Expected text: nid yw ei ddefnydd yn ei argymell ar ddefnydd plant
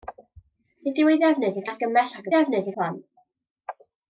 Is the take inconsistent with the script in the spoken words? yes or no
no